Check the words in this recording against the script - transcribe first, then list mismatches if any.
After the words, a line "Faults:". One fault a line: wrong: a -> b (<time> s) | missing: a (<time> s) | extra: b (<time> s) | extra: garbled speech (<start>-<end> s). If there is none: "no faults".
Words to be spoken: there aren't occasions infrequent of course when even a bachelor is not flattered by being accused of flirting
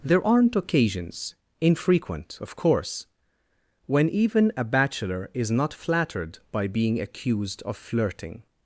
there aren't occasions infrequent of course when even a bachelor is not flattered by being accused of flirting
Faults:
no faults